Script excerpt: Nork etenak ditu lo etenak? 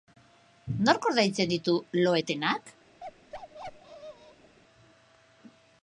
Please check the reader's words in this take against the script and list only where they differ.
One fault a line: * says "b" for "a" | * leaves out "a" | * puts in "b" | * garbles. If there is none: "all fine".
* says "ordaintzen" for "etenak"